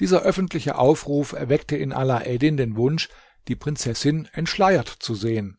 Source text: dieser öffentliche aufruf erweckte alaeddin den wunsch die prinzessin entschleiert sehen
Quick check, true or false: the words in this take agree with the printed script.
false